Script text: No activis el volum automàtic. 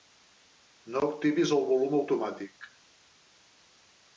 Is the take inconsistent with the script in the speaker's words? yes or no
no